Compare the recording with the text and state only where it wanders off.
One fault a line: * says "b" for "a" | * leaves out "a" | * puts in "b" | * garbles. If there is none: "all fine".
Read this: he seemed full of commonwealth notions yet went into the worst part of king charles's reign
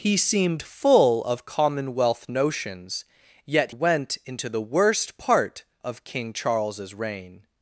all fine